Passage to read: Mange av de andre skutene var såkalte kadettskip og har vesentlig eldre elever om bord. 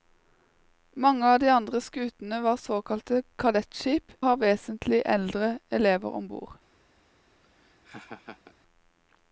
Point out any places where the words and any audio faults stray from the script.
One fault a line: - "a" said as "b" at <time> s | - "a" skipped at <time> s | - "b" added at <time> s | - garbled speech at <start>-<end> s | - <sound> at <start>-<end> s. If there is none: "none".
- "og" skipped at 4.2 s
- laugh at 7.4-8.5 s